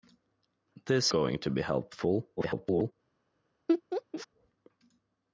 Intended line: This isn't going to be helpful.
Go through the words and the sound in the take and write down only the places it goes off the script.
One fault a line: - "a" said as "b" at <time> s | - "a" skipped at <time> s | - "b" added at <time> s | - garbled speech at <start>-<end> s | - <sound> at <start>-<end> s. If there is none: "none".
- "isn't" skipped at 1.1 s
- garbled speech at 2.4-2.9 s
- laugh at 3.7-4.3 s